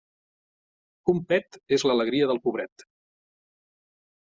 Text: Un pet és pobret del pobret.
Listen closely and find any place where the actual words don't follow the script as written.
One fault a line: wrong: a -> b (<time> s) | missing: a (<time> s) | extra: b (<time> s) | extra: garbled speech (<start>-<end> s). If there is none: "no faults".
wrong: pobret -> l'alegria (1.9 s)